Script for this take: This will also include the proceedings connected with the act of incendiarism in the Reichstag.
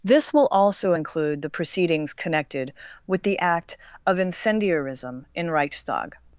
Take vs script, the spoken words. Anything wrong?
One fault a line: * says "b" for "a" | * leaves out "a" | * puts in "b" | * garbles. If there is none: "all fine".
* leaves out "the"